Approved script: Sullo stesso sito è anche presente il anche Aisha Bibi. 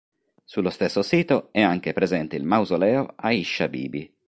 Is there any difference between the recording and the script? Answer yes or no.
yes